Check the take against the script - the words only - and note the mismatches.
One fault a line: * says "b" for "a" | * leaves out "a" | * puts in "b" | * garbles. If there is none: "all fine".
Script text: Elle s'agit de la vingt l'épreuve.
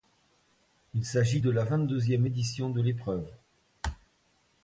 * says "Il" for "Elle"
* puts in "deuxième édition de"